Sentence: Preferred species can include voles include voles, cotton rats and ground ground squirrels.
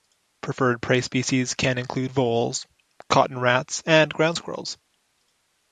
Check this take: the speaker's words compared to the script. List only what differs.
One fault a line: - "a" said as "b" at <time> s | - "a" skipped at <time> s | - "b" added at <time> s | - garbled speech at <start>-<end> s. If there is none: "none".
- "prey" added at 0.8 s
- "include voles" skipped at 2.6 s
- "ground" skipped at 4.4 s